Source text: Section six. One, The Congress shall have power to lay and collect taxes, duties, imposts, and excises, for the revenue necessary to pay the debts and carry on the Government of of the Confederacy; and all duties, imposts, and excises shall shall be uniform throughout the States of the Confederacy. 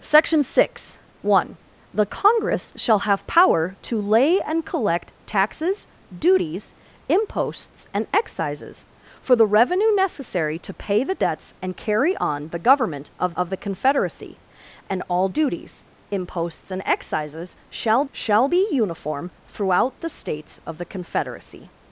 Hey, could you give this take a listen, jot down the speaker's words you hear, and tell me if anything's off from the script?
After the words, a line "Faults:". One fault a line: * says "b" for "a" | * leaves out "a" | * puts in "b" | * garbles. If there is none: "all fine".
Section six. One, The Congress shall have power to lay and collect taxes, duties, imposts, and excises, for the revenue necessary to pay the debts and carry on the Government of of the Confederacy; and all duties, imposts, and excises shall shall be uniform throughout the States of the Confederacy.
Faults:
all fine